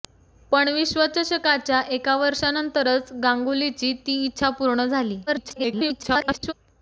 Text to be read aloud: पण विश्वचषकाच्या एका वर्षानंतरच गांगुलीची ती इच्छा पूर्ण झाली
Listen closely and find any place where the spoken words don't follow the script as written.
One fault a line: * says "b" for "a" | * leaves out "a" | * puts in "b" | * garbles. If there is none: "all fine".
* garbles